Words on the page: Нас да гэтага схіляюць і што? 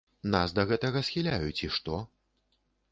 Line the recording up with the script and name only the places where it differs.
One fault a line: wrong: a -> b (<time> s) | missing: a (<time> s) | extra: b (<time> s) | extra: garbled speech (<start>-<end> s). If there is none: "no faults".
no faults